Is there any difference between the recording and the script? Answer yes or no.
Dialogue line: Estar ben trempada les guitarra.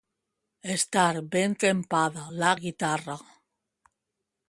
yes